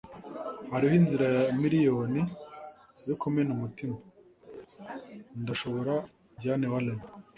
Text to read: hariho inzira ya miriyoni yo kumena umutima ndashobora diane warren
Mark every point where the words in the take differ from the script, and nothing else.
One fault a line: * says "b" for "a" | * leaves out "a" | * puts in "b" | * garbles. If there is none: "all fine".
all fine